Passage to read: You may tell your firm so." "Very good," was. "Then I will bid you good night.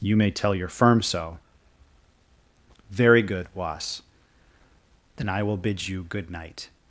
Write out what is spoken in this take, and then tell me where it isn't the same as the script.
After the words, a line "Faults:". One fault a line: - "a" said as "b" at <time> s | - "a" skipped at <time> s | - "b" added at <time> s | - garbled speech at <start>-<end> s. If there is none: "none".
You may tell your firm so." "Very good," was. "Then I will bid you good night.
Faults:
none